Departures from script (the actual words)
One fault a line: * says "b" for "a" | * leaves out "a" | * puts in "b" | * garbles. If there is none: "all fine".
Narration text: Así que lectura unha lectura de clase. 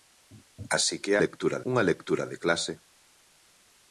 all fine